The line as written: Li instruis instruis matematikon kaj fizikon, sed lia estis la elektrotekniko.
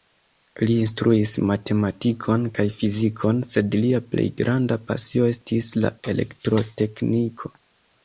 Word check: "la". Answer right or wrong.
right